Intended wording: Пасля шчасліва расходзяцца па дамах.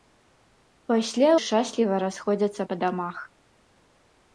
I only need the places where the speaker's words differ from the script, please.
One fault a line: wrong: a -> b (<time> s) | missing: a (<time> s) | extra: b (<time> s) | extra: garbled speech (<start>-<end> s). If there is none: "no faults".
no faults